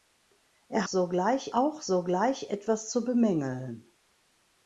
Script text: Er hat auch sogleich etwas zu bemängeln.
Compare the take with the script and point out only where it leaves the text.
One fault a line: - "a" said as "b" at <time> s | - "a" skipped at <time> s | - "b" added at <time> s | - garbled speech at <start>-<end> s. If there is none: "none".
- "hat" said as "sogleich" at 0.9 s